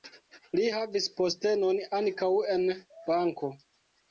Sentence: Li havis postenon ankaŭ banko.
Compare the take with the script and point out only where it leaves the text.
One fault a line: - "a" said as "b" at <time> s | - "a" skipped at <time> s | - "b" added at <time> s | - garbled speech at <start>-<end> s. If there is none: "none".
- "en" added at 2.6 s